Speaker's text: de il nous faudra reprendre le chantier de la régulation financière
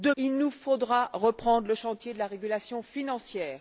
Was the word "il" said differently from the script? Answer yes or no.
no